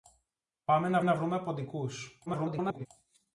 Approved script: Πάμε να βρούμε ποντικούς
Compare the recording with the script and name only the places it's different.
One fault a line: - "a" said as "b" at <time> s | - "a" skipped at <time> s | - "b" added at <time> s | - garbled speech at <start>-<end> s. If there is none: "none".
- "να" added at 1.0 s
- garbled speech at 2.3-2.9 s